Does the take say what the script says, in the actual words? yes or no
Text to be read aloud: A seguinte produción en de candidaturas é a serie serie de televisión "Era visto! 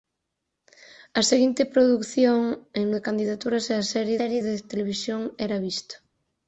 yes